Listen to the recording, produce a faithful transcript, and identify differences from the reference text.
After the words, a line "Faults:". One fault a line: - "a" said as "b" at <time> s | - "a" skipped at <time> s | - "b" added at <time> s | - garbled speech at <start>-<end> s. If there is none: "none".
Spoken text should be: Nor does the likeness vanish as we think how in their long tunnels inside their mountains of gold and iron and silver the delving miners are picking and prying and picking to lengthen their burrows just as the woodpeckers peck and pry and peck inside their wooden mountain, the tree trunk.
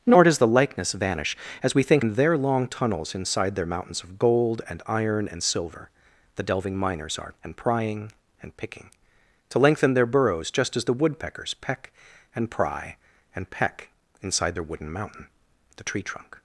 Nor does the likeness vanish as we think in their long tunnels inside their mountains of gold and iron and silver the delving miners are and prying and picking to lengthen their burrows just as the woodpeckers peck and pry and peck inside their wooden mountain, the tree trunk.
Faults:
- "how" skipped at 2.0 s
- "picking" skipped at 7.3 s